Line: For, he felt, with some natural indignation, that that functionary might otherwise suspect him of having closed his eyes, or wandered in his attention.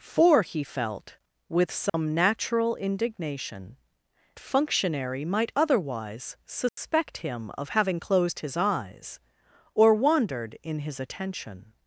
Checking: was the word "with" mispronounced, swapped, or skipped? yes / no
no